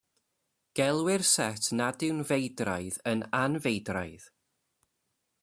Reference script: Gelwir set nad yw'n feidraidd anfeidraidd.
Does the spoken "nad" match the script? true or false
true